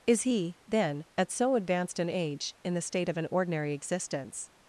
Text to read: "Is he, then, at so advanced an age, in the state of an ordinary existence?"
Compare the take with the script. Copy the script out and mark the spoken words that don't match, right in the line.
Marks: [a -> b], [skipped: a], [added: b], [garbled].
"Is he, then, at so advanced an age, in the state of an ordinary existence?"